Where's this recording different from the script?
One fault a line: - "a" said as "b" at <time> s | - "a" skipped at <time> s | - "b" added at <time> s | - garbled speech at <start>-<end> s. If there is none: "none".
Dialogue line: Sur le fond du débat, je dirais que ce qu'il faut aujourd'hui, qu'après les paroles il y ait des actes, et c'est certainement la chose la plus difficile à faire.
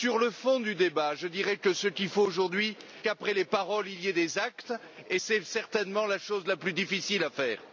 none